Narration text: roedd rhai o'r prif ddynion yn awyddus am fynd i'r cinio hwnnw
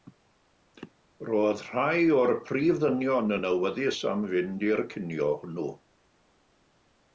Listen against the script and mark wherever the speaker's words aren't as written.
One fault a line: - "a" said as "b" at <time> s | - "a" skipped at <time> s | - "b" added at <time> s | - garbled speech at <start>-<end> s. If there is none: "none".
none